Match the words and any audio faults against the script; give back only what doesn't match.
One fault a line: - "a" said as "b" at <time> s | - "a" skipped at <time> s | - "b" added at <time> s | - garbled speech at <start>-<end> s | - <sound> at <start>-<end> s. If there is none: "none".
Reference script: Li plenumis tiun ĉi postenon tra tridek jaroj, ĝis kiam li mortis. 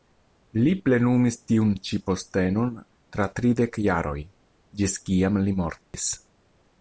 - dropout at 5.8-5.9 s